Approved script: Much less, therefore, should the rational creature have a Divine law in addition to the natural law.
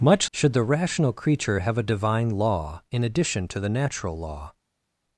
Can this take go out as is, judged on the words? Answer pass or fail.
fail